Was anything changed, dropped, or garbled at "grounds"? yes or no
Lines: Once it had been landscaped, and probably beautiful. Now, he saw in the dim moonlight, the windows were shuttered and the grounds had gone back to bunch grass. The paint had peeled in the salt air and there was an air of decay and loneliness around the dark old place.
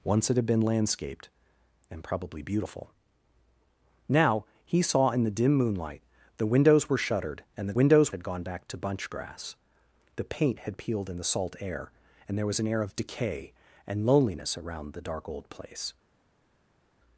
yes